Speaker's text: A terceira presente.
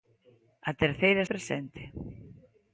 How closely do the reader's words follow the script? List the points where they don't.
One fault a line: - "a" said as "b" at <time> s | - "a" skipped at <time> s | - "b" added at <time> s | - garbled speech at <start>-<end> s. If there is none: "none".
none